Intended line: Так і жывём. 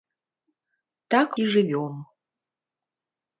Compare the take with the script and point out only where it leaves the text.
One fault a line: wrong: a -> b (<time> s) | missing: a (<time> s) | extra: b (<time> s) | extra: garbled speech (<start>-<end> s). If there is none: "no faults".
no faults